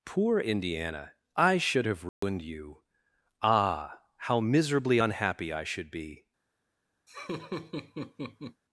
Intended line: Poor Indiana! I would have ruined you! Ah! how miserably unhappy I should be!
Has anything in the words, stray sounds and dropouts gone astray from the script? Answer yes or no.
yes